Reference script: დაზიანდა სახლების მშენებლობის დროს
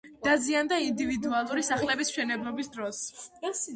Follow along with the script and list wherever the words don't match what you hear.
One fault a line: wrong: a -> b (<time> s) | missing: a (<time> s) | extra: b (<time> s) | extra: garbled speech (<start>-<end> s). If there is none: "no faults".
extra: ინდივიდუალური (0.8 s)